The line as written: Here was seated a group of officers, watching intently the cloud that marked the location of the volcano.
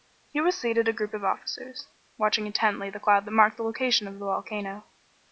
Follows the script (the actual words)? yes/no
yes